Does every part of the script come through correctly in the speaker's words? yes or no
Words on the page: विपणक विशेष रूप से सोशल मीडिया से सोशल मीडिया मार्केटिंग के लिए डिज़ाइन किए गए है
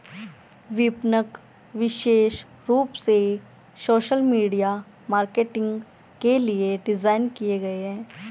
no